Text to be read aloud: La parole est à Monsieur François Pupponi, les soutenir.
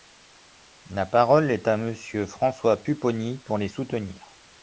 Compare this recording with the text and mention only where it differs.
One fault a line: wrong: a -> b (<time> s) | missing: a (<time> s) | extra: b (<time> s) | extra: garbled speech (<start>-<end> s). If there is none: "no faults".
extra: pour (3.4 s)